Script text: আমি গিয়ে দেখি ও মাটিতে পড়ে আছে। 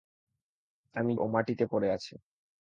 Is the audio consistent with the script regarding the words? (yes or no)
no